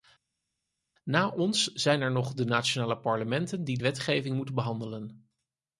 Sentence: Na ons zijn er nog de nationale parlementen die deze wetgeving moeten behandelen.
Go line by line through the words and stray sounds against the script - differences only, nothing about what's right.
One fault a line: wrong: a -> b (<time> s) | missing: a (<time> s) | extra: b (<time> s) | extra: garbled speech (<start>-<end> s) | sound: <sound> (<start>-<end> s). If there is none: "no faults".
missing: deze (3.8 s)